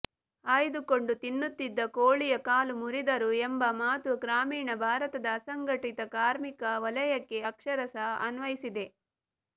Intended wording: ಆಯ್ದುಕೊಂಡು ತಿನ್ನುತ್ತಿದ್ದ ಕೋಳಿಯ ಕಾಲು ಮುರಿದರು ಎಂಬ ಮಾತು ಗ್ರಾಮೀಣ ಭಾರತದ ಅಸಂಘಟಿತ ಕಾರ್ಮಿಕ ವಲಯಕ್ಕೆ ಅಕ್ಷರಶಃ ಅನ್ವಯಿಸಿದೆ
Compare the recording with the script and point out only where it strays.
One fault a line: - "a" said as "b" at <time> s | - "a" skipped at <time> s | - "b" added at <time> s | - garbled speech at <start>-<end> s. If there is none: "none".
none